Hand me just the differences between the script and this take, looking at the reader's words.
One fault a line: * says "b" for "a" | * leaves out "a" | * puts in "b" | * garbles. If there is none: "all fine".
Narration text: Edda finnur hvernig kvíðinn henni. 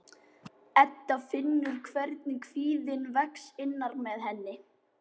* puts in "vex innra með"